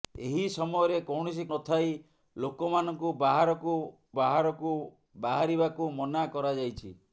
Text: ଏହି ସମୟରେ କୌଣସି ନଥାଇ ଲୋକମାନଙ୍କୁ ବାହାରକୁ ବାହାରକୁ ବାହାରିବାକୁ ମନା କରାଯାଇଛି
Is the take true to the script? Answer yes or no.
yes